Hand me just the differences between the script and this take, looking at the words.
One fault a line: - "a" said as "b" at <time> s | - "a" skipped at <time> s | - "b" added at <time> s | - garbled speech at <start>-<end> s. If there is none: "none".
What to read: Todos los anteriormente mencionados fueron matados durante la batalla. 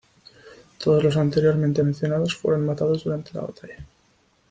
none